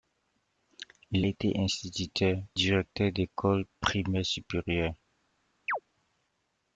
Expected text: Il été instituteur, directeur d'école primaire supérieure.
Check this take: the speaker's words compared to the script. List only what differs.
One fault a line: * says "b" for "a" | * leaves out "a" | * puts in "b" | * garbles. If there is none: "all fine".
all fine